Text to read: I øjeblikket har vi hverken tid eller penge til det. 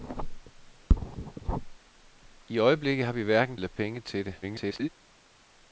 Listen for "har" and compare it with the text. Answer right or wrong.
right